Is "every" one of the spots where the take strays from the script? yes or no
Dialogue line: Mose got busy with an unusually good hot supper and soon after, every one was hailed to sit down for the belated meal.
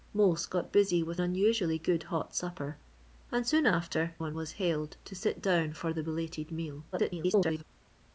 yes